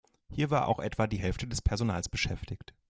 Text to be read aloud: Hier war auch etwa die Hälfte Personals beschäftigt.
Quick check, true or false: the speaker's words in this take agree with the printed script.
false